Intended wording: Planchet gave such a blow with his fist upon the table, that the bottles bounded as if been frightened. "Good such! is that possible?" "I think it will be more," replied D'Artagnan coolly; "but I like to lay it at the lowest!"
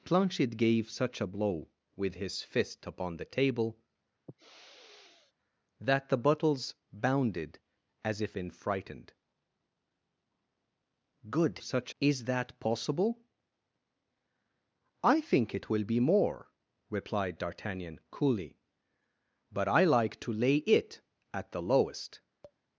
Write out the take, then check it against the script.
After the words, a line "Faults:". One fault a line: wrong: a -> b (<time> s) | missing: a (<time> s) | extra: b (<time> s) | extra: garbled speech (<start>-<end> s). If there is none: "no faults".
Planchet gave such a blow with his fist upon the table, that the bottles bounded as if been frightened. "Good such! is that possible?" "I think it will be more," replied D'Artagnan coolly; "but I like to lay it at the lowest!"
Faults:
no faults